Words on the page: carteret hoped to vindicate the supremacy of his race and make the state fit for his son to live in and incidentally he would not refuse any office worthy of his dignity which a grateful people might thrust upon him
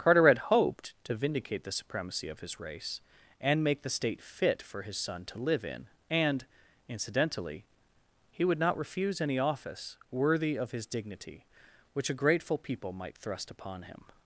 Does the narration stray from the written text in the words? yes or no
no